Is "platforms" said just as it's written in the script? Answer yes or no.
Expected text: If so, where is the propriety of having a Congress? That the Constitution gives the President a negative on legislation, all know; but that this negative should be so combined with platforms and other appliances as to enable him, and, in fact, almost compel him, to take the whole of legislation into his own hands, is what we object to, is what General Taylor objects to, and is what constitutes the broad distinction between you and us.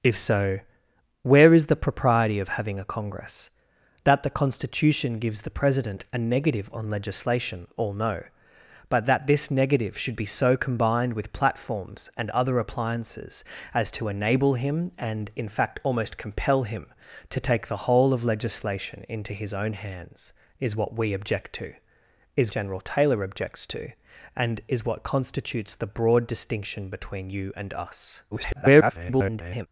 yes